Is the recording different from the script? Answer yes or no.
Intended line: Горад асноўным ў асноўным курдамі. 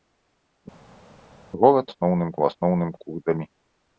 no